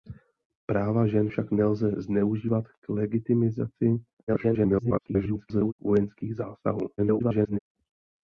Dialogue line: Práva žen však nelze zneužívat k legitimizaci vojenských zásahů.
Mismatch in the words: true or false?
true